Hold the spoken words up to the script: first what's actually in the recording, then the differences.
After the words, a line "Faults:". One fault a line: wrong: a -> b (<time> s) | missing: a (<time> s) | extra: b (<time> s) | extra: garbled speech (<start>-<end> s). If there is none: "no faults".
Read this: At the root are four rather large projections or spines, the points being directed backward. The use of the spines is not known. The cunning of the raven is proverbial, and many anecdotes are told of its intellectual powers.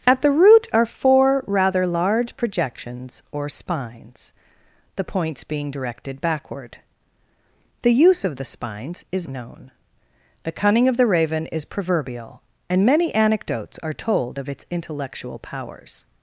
At the root are four rather large projections or spines, the points being directed backward. The use of the spines is known. The cunning of the raven is proverbial, and many anecdotes are told of its intellectual powers.
Faults:
missing: not (9.3 s)